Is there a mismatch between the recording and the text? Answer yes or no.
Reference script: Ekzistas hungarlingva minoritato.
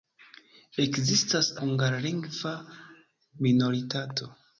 no